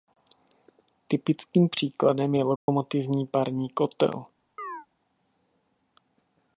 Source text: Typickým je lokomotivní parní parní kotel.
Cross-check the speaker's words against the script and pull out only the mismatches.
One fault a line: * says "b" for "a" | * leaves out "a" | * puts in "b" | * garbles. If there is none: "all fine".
* puts in "příkladem"
* leaves out "parní"